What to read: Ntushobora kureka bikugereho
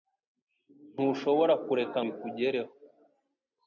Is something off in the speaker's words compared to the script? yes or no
no